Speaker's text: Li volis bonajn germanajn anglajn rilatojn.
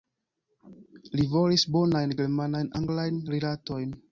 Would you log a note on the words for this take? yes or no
no